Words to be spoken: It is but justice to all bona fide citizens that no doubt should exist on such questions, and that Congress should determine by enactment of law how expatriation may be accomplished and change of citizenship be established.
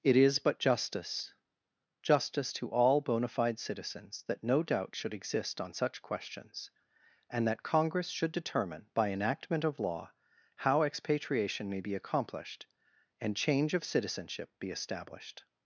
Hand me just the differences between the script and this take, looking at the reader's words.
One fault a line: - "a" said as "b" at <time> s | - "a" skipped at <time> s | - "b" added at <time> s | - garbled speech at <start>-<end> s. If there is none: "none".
- "justice" added at 2.0 s